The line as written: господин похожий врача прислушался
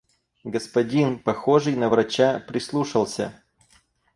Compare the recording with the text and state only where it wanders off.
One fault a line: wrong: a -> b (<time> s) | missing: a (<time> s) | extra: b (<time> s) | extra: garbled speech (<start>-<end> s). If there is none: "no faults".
extra: на (1.8 s)